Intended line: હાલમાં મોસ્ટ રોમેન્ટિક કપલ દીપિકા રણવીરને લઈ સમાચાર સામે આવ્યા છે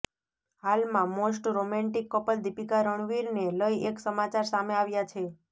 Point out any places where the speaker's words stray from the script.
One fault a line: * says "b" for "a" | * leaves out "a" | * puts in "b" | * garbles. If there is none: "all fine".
* puts in "એક"